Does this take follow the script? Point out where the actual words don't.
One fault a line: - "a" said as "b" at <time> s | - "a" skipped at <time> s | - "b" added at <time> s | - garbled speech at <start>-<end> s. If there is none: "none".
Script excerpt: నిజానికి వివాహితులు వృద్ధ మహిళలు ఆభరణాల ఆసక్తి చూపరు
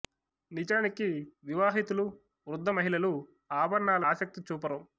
none